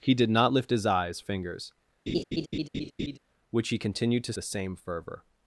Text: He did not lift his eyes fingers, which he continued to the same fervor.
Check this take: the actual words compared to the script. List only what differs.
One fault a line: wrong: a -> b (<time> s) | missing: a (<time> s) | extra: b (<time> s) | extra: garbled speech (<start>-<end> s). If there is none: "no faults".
no faults